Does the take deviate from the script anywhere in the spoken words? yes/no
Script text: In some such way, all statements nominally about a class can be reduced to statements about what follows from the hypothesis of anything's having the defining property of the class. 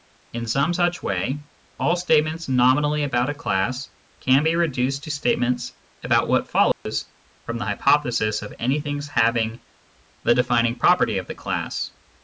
no